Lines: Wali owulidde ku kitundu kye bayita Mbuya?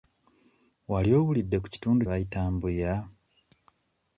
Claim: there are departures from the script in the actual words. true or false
true